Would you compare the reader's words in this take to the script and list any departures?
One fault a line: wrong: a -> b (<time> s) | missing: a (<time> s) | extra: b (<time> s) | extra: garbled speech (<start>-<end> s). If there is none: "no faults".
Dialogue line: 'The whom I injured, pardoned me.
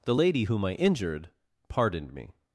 extra: lady (0.1 s)